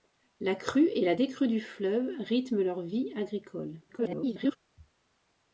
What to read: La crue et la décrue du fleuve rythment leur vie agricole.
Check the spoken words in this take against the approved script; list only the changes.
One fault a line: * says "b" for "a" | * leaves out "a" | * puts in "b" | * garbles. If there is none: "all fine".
* garbles